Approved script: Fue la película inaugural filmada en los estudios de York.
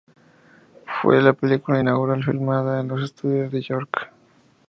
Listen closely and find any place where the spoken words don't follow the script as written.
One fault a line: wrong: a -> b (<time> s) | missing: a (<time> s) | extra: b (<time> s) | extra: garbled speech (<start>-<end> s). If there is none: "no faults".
no faults